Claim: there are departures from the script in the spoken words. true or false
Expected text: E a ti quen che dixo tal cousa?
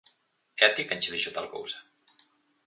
false